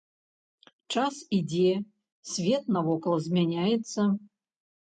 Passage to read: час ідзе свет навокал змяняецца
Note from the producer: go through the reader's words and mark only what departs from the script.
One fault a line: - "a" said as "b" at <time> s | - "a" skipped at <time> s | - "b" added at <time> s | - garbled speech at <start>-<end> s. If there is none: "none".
none